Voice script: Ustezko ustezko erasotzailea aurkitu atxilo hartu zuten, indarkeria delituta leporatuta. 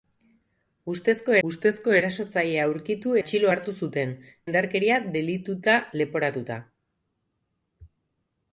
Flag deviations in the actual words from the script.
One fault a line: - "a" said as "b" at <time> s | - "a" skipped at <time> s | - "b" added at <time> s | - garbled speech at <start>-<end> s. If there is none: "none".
none